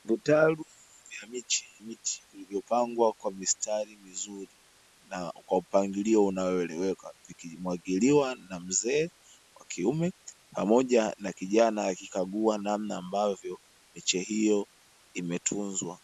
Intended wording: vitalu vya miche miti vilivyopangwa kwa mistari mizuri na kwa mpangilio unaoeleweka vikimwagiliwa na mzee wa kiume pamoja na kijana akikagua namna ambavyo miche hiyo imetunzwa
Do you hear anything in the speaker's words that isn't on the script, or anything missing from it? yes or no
no